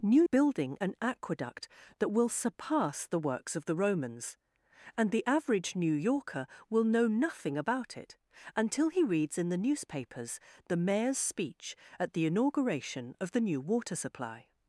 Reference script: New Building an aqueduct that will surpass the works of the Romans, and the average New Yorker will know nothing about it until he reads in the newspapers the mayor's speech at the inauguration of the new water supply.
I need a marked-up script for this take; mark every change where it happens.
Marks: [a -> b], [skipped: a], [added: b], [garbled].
New Building an aqueduct that will surpass the works of the Romans, and the average New Yorker will know nothing about it until he reads in the newspapers the mayor's speech at the inauguration of the new water supply.